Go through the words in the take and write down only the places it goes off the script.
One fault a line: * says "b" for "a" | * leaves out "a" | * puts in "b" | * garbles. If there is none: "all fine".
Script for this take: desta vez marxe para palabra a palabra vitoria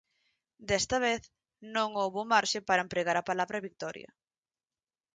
* puts in "non houbo"
* says "empregar" for "palabra"